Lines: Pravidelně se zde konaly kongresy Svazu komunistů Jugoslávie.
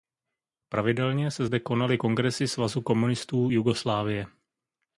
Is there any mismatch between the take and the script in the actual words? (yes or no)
no